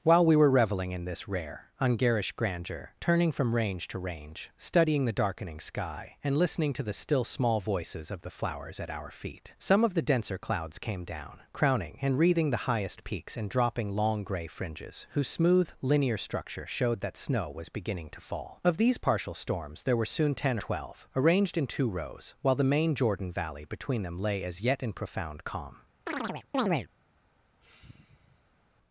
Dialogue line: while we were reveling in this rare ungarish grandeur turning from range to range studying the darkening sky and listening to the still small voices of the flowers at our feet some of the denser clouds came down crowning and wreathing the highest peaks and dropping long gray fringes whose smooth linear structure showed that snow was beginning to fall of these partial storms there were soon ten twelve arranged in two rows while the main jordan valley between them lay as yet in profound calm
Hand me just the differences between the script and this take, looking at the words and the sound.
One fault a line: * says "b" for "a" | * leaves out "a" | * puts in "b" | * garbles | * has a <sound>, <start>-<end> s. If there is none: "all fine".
* has a chirp, 26.1-26.9 s
* has a sigh, 27.6-28.7 s